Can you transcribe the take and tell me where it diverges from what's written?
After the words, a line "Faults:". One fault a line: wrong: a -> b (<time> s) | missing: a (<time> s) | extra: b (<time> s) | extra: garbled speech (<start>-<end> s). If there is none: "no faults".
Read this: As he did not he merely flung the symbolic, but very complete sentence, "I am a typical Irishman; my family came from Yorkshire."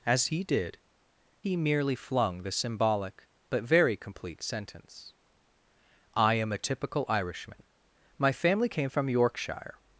As he did he merely flung the symbolic, but very complete sentence, "I am a typical Irishman; my family came from Yorkshire."
Faults:
missing: not (0.8 s)